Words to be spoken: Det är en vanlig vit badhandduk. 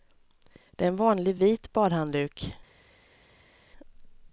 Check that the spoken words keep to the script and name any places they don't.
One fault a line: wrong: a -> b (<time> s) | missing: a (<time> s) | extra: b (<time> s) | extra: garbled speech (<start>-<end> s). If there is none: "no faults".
no faults